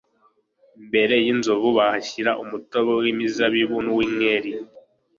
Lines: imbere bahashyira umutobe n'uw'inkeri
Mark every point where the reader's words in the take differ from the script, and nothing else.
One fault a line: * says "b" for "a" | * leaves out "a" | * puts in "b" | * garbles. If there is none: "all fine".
* puts in "y'inzovu"
* puts in "w'imizabibu"